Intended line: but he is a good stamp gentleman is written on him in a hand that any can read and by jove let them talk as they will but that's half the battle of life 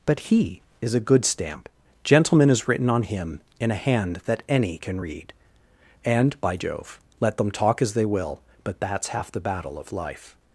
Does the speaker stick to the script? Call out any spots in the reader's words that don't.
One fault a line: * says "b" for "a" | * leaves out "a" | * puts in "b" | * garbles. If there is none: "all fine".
all fine